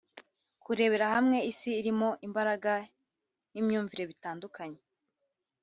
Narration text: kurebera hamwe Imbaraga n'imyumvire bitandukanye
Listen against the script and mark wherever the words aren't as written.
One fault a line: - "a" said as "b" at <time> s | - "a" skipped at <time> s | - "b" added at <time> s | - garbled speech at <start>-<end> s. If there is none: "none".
- "Isi irimo" added at 1.5 s